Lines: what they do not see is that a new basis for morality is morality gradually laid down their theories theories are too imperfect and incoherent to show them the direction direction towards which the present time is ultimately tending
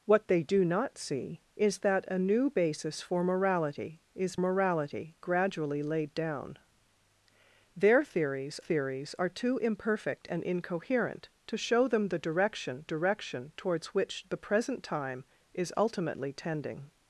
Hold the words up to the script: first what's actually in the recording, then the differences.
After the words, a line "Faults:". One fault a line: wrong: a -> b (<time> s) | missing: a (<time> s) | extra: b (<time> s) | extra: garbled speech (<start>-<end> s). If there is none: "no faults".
what they do not see is that a new basis for morality is morality gradually laid down their theories theories are too imperfect and incoherent to show them the direction direction towards which the present time is ultimately tending
Faults:
no faults